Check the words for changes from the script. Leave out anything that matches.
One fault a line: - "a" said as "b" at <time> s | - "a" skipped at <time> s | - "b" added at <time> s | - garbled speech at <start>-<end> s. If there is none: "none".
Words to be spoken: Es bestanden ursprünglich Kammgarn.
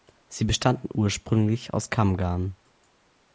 - "Es" said as "Sie" at 0.3 s
- "aus" added at 1.8 s